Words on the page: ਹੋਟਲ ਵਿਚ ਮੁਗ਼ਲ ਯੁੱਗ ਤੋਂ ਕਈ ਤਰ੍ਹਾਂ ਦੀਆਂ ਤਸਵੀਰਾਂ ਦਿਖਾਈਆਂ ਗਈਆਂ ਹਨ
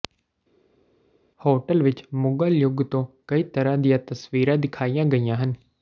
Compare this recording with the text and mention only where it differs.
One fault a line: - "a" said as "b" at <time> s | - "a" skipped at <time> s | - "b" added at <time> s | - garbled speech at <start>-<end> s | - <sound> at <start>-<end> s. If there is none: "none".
none